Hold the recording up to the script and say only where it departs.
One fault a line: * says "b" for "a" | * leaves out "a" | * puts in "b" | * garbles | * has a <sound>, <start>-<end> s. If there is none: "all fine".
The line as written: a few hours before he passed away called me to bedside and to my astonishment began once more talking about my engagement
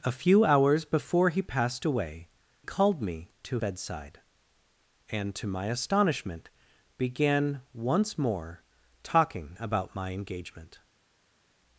all fine